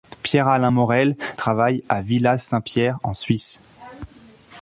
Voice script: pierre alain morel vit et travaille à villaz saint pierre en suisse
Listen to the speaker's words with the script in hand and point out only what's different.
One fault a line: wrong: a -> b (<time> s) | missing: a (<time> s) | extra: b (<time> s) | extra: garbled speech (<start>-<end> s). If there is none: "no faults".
missing: vit et (1.2 s)